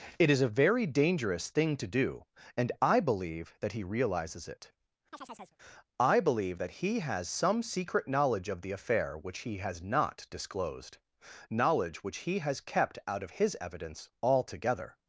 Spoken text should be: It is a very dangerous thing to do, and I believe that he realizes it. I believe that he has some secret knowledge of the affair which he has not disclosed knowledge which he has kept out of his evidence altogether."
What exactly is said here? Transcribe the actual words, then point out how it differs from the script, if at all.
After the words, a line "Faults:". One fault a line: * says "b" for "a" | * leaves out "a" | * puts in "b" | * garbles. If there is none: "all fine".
It is a very dangerous thing to do, and I believe that he realizes it. I believe that he has some secret knowledge of the affair which he has not disclosed knowledge which he has kept out of his evidence altogether."
Faults:
all fine